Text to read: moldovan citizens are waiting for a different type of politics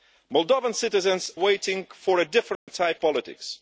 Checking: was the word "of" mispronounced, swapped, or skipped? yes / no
yes